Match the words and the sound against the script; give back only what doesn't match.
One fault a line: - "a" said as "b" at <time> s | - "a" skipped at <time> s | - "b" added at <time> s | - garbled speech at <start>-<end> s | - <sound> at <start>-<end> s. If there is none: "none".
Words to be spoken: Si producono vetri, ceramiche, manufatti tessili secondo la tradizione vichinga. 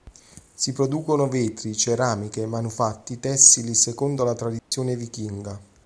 - dropout at 4.6-4.7 s